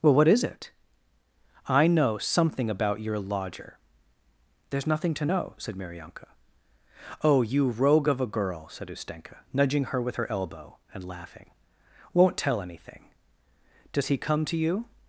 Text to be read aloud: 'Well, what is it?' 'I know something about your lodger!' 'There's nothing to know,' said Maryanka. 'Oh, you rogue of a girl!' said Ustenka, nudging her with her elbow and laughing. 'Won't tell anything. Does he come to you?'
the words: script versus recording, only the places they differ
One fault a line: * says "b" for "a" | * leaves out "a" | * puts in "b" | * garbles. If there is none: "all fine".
all fine